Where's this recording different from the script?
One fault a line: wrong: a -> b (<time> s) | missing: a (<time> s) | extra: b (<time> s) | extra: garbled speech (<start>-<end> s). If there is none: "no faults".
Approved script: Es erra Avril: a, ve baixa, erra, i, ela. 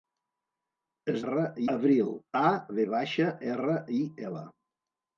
no faults